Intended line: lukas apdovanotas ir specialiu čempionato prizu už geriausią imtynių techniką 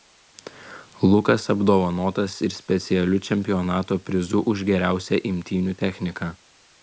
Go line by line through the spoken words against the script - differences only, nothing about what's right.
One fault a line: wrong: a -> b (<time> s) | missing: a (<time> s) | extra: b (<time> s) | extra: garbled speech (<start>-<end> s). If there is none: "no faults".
no faults